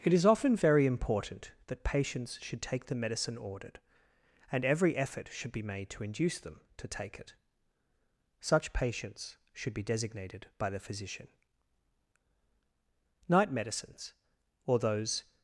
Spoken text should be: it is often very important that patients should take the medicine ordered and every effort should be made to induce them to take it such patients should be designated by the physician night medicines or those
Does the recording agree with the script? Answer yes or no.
yes